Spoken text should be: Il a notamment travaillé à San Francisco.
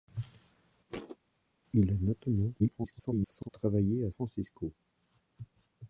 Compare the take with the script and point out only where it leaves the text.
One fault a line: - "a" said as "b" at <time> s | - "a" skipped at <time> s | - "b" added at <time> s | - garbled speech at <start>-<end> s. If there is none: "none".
- garbled speech at 2.6-3.5 s
- "San" skipped at 4.1 s